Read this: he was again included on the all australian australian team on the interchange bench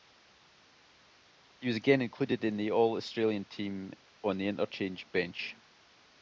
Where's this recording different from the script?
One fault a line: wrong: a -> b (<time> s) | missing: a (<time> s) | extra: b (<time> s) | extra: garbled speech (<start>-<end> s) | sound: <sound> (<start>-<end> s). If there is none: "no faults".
wrong: on -> in (2.4 s)
missing: australian (3.4 s)